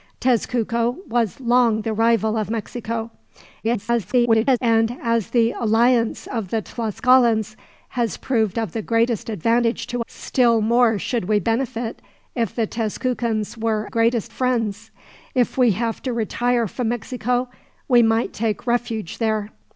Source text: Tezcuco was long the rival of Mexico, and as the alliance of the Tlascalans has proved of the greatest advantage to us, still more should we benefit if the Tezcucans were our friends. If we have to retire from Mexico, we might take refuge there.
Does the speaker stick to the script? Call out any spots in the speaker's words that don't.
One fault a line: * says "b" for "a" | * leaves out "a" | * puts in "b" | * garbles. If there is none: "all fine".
* garbles
* leaves out "us"
* says "greatest" for "our"